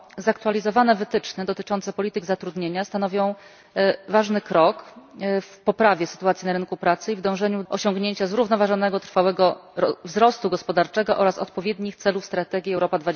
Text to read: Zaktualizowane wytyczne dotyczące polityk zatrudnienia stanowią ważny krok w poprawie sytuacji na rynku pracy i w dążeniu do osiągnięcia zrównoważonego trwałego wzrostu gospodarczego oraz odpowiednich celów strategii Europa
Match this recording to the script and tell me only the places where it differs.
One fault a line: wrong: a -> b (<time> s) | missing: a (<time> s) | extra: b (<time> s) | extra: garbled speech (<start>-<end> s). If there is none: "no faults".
missing: do (7.6 s)